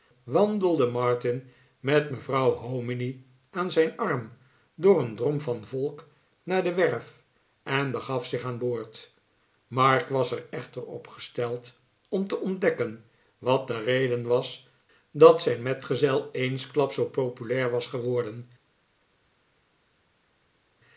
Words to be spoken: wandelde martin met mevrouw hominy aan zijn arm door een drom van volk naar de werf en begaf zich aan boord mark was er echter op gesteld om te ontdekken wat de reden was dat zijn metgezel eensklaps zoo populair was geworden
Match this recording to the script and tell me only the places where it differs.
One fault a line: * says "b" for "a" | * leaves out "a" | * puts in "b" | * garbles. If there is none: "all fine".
all fine